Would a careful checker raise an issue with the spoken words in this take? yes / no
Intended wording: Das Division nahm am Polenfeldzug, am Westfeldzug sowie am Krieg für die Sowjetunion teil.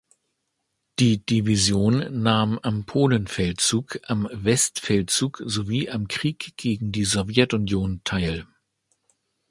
yes